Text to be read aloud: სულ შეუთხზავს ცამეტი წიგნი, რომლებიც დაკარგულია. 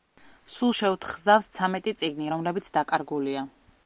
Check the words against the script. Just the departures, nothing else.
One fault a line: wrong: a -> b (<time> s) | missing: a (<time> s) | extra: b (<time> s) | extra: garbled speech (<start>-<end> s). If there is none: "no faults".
no faults